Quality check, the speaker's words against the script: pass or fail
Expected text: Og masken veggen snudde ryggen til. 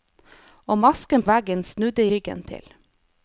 pass